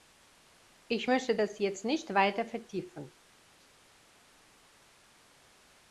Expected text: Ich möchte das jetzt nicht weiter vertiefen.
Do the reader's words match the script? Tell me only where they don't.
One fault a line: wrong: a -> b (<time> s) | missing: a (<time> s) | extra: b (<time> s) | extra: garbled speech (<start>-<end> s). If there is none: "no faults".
no faults